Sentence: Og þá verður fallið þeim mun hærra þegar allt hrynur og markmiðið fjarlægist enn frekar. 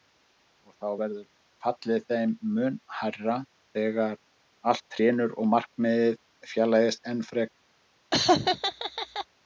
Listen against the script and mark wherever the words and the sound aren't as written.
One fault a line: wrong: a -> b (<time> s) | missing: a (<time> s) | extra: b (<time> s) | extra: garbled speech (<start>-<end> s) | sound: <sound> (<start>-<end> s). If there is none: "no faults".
sound: laugh (8.1-9.3 s)